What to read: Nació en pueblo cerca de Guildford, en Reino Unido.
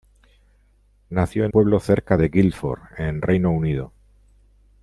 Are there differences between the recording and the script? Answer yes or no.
no